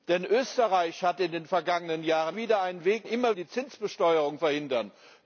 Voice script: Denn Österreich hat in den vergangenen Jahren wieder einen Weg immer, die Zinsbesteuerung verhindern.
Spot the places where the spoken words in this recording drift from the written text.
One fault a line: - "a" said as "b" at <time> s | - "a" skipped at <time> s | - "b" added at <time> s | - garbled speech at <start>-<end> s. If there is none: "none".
none